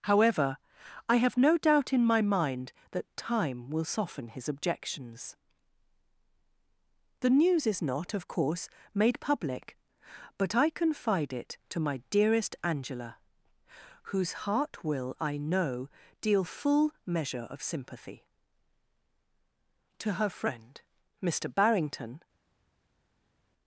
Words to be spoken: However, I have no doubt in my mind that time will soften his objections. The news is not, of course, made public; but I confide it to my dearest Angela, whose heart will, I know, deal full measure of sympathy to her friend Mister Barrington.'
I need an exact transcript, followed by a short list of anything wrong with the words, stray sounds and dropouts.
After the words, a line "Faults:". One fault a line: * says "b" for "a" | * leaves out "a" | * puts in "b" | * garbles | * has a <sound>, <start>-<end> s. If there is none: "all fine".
However, I have no doubt in my mind that time will soften his objections. The news is not, of course, made public; but I confide it to my dearest Angela, whose heart will, I know, deal full measure of sympathy to her friend Mister Barrington.'
Faults:
all fine